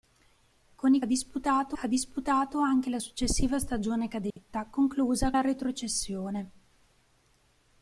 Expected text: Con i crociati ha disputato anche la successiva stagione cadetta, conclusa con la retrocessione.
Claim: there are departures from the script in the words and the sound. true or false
true